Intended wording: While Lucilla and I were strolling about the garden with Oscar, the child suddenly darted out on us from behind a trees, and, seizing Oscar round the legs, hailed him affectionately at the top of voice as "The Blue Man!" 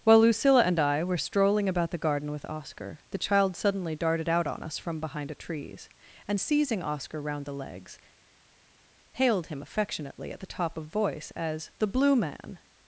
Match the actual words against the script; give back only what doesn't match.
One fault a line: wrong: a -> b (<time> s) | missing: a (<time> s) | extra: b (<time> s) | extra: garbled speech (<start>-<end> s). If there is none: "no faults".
no faults